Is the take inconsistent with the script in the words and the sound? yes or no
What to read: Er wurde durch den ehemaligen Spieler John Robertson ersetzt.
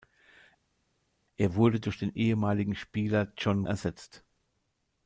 yes